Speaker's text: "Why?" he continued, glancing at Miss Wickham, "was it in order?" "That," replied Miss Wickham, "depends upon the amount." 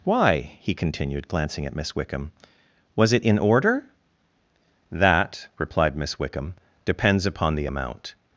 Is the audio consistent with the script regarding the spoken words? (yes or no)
yes